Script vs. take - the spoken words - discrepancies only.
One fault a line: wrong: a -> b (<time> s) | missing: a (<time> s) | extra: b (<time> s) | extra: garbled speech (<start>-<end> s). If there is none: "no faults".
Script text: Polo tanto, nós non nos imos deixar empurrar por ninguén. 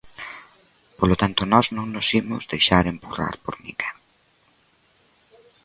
no faults